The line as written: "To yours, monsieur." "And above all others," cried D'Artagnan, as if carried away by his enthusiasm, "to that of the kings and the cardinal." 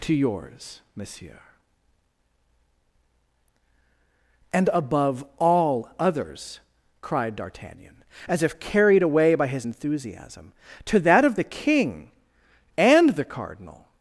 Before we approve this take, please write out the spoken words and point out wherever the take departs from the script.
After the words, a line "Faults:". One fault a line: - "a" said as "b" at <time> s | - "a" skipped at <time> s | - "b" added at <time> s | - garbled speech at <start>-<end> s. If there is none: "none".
"To yours, monsieur." "And above all others," cried D'Artagnan, as if carried away by his enthusiasm, "to that of the king and the cardinal."
Faults:
- "kings" said as "king" at 11.4 s